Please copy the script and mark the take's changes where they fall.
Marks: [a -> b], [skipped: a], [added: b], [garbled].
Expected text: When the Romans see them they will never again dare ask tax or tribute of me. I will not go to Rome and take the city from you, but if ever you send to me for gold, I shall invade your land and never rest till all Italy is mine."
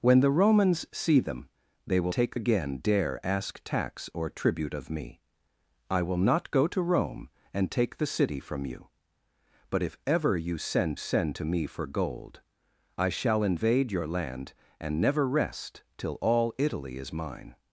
When the Romans see them they will [never -> take] again dare ask tax or tribute of me. I will not go to Rome and take the city from you, but if ever you send [added: send] to me for gold, I shall invade your land and never rest till all Italy is mine."